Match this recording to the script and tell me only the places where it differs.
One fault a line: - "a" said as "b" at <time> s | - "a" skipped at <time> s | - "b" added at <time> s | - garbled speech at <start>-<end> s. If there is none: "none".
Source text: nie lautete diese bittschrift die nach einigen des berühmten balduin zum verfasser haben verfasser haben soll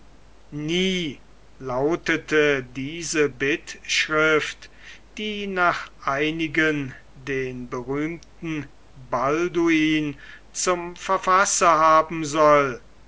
- "des" said as "den" at 7.1 s
- "verfasser haben" skipped at 12.2 s